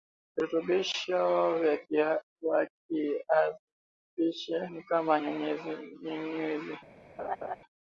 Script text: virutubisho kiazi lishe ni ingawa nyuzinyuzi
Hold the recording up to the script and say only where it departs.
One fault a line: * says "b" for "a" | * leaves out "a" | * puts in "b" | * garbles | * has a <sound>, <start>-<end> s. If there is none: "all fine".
* puts in "vya"
* says "kama" for "ingawa"
* has a laugh, 7.2-7.6 s